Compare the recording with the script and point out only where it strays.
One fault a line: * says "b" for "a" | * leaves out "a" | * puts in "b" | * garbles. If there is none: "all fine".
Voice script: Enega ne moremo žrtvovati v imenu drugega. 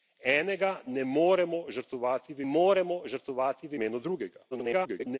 * puts in "moremo žrtvovati v"
* garbles